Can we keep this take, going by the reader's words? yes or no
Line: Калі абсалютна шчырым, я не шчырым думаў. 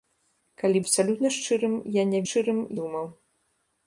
yes